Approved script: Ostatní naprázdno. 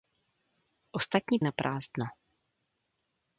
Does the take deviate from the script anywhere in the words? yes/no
no